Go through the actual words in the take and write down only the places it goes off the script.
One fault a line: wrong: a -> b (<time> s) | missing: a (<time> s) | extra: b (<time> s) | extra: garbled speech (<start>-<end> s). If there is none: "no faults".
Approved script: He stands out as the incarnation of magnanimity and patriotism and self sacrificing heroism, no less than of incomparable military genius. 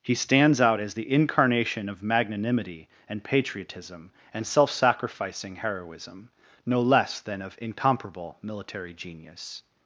no faults